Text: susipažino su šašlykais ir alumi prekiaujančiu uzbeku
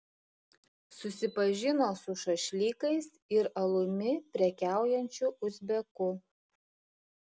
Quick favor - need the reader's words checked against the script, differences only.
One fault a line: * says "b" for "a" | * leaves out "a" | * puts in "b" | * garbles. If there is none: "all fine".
all fine